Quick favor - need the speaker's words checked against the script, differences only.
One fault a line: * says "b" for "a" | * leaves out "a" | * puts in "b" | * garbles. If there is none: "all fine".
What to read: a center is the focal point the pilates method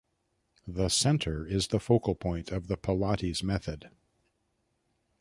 * says "the" for "a"
* puts in "of"